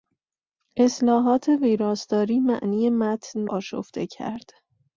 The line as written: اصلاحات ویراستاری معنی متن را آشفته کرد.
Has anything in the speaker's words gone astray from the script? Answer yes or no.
yes